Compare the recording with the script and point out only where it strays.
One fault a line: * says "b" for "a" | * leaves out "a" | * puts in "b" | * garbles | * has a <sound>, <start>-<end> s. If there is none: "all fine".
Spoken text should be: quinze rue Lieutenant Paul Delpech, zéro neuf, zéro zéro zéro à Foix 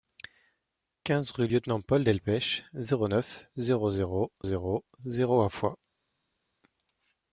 * puts in "zéro"